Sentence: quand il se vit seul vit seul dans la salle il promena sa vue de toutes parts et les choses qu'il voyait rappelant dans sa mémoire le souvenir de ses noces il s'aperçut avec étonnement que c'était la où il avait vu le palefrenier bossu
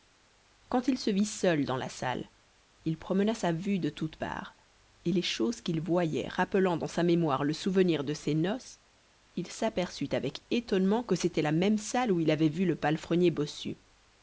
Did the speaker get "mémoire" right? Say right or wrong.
right